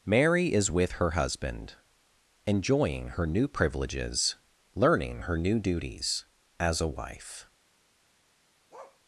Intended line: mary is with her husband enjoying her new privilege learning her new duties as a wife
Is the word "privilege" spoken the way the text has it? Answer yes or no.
no